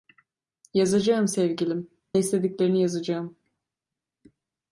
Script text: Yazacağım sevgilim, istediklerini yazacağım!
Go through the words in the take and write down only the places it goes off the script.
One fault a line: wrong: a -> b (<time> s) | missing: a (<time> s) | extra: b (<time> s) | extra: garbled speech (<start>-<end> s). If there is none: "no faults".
no faults